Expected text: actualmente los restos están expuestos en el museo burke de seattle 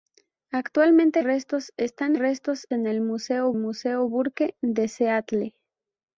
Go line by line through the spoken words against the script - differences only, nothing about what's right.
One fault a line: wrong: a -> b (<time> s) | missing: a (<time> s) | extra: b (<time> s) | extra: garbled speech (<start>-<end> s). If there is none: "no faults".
missing: los (1.2 s)
wrong: expuestos -> restos (2.2 s)
extra: museo (3.6 s)